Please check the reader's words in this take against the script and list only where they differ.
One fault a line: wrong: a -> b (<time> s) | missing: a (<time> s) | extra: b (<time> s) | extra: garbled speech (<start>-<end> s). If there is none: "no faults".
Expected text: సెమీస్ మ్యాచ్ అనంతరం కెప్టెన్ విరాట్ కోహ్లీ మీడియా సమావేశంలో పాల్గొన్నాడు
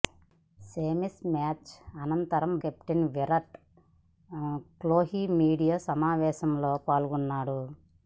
no faults